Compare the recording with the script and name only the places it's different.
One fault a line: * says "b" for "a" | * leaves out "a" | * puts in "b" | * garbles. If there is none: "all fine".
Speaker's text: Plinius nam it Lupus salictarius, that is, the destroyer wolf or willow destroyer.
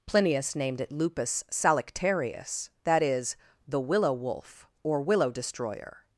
* says "named" for "nam"
* says "willow" for "destroyer"